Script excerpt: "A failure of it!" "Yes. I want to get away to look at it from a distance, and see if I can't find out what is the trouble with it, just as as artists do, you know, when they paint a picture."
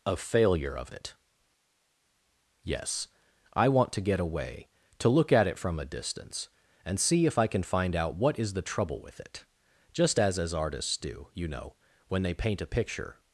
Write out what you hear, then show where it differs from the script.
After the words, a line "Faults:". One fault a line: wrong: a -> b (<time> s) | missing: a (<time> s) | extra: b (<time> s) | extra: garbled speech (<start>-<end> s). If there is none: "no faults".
"A failure of it!" "Yes. I want to get away to look at it from a distance, and see if I can find out what is the trouble with it, just as as artists do, you know, when they paint a picture."
Faults:
wrong: can't -> can (7.5 s)